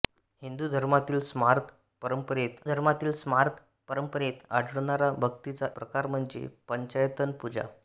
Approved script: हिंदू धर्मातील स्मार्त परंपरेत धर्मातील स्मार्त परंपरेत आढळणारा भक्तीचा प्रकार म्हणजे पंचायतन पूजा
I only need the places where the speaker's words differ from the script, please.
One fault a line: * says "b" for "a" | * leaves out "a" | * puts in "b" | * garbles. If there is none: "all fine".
all fine